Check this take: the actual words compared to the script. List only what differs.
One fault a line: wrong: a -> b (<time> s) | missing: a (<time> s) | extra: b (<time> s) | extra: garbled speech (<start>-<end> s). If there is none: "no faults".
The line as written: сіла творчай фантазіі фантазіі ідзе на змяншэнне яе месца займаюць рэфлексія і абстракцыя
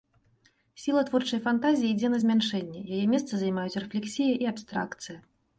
missing: фантазіі (1.9 s)